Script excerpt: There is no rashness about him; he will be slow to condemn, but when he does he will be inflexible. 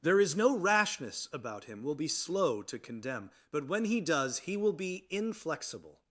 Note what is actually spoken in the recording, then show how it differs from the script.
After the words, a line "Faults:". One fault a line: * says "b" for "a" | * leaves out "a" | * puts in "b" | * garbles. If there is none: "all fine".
There is no rashness about him; will be slow to condemn, but when he does he will be inflexible.
Faults:
* leaves out "he"